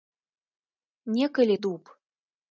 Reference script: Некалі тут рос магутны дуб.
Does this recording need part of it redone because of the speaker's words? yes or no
yes